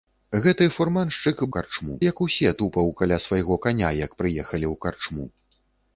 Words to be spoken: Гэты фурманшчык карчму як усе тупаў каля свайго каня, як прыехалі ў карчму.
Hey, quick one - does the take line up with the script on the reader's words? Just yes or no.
yes